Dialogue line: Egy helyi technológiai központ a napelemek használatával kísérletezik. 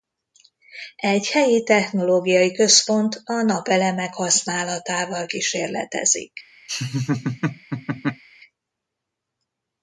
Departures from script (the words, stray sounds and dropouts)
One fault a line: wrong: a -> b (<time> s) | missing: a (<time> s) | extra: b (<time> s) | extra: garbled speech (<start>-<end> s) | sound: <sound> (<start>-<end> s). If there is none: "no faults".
sound: laugh (6.7-8.2 s)